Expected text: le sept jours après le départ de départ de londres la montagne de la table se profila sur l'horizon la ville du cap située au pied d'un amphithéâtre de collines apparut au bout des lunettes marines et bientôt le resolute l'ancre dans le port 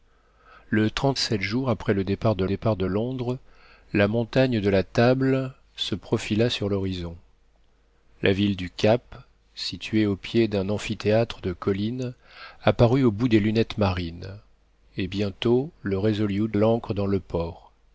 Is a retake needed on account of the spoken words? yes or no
no